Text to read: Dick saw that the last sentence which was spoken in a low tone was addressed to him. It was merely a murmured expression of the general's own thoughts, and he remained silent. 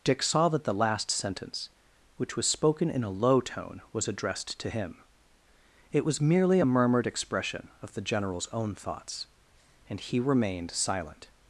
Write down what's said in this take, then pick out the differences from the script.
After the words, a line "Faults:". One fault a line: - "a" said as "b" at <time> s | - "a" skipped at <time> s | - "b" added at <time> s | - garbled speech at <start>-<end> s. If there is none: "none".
Dick saw that the last sentence which was spoken in a low tone was addressed to him. It was merely a murmured expression of the general's own thoughts, and he remained silent.
Faults:
none